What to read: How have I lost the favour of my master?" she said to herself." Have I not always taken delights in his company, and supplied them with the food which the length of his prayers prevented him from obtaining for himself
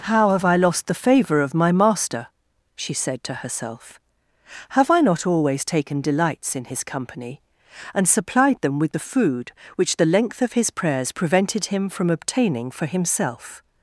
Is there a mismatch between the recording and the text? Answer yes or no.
no